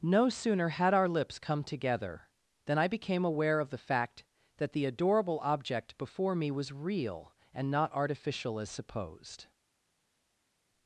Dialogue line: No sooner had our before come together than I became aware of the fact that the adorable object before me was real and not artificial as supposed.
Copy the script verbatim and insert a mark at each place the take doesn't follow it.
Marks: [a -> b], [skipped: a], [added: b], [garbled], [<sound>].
No sooner had our [before -> lips] come together than I became aware of the fact that the adorable object before me was real and not artificial as supposed.